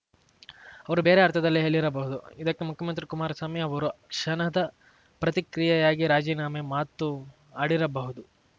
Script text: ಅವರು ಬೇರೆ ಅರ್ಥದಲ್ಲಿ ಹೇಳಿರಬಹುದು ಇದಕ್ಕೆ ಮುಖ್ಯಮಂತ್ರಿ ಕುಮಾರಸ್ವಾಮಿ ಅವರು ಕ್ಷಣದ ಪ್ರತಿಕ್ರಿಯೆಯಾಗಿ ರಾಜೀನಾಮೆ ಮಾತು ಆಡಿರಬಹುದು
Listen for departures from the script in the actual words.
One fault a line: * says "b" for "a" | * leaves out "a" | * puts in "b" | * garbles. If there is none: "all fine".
all fine